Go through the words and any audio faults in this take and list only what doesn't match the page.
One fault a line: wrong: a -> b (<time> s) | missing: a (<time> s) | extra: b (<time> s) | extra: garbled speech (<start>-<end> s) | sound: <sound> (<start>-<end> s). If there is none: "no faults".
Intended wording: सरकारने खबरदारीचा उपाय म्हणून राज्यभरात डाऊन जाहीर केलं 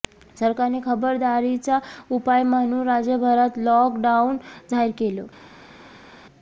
extra: लॉक (3.6 s)